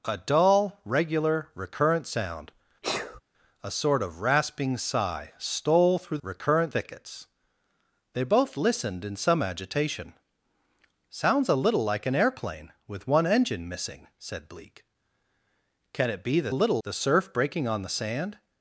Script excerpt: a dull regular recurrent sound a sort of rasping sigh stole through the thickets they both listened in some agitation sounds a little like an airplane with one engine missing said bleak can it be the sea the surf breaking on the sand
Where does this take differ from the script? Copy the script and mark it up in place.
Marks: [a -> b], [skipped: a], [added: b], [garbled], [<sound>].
a dull regular recurrent sound [sneeze] a sort of rasping sigh stole through [the -> recurrent] thickets they both listened in some agitation sounds a little like an airplane with one engine missing said bleak can it be the [sea -> little] the surf breaking on the sand